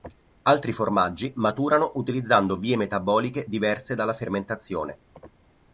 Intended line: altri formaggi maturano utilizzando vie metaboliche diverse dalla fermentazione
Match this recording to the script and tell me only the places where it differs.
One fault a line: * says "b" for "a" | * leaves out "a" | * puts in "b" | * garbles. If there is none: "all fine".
all fine